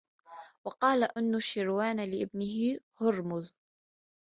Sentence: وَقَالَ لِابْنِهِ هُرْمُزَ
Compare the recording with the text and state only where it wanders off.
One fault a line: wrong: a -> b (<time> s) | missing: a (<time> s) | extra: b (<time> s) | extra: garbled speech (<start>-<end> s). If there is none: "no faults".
extra: أَنُوشِرْوَانَ (1.2 s)